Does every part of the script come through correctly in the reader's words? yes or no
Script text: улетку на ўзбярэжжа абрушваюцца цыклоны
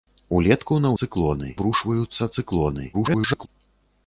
no